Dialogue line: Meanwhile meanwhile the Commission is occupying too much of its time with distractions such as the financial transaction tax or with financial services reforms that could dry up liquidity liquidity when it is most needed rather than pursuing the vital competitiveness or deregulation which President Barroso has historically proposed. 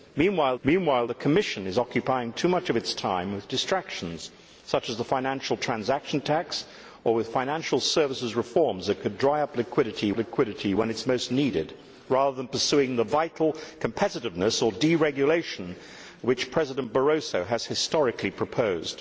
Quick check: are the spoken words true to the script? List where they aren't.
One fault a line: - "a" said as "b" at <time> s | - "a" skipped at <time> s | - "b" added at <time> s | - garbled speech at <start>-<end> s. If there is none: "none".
none